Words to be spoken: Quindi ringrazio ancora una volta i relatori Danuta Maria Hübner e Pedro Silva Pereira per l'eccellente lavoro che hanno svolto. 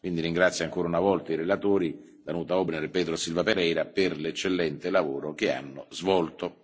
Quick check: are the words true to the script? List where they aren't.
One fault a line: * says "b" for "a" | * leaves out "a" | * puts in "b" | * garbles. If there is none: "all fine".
all fine